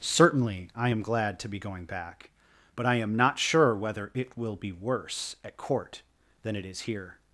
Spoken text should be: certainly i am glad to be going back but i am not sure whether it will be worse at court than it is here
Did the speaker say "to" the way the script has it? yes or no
yes